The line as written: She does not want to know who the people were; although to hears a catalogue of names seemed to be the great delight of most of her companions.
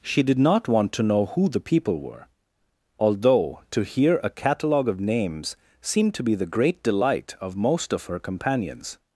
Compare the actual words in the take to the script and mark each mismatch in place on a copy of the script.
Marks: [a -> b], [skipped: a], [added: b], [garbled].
She [does -> did] not want to know who the people were; although to [hears -> hear] a catalogue of names seemed to be the great delight of most of her companions.